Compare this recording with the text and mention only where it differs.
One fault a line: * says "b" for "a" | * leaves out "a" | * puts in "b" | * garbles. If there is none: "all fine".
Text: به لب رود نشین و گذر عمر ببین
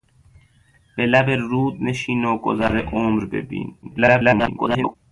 * garbles